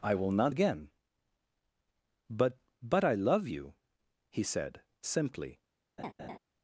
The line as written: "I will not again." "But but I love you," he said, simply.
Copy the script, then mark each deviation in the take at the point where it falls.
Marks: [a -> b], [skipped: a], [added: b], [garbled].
"I will not again." "But but I love you," he said, simply.